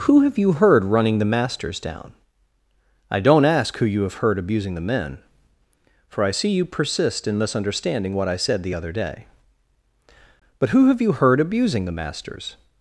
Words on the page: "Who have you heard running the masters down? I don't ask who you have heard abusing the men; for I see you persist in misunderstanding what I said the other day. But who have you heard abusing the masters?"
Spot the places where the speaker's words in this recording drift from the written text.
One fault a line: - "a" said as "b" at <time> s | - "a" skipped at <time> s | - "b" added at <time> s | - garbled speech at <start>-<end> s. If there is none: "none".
none